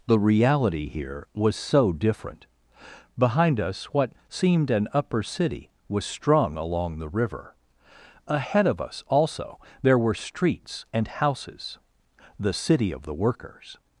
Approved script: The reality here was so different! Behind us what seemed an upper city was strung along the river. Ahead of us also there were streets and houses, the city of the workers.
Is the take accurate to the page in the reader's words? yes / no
yes